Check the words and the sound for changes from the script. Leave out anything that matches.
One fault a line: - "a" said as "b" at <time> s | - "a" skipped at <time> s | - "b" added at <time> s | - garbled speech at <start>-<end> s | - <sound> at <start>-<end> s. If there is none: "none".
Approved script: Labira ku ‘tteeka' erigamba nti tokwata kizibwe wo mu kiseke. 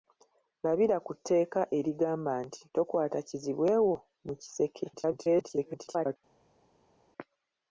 - garbled speech at 4.9-6.2 s